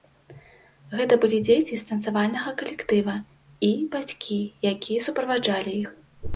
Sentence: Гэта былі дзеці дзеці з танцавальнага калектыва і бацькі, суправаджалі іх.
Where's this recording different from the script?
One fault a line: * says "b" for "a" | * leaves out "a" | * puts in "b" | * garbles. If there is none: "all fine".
* leaves out "дзеці"
* puts in "якія"